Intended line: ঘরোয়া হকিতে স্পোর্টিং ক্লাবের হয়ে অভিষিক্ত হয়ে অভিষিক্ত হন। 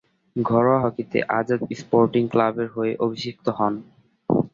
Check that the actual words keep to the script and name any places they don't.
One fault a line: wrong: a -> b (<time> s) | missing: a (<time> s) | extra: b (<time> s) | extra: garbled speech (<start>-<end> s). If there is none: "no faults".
extra: আজাদ (1.4 s)
missing: হয়ে অভিষিক্ত (3.5 s)